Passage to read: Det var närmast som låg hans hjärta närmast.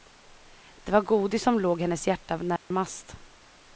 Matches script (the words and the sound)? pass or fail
fail